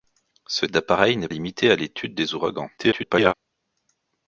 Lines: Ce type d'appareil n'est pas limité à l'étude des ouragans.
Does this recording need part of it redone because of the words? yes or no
yes